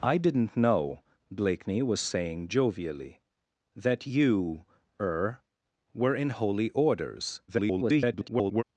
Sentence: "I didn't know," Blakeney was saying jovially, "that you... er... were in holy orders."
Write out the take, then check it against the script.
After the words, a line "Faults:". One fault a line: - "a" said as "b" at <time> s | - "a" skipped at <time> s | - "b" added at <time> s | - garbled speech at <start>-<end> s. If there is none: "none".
"I didn't know," Blakeney was saying jovially, "that you... er... were in holy orders." [garbled]
Faults:
- garbled speech at 7.5-8.6 s